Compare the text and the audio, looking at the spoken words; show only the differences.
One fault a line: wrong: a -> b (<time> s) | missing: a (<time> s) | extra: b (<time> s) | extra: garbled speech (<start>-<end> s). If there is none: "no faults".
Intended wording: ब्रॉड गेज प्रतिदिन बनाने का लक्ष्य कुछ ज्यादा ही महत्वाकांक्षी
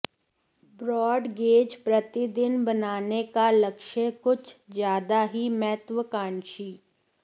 no faults